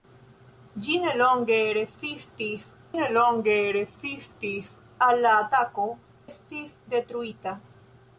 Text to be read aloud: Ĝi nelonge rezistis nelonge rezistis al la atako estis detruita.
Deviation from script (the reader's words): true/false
false